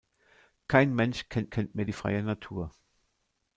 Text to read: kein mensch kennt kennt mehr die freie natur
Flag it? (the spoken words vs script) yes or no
no